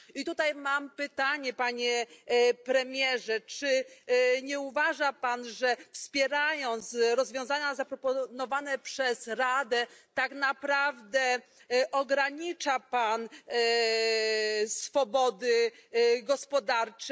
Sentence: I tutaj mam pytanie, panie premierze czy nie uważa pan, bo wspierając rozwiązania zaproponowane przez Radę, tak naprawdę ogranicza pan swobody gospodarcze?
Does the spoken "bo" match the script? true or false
false